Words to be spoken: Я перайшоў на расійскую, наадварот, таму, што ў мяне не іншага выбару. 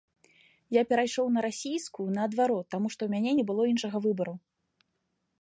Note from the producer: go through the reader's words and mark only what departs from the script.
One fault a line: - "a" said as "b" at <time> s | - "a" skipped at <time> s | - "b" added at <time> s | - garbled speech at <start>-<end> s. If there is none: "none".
- "было" added at 3.5 s